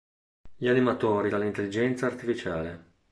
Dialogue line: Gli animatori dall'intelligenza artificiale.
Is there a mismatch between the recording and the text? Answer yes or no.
no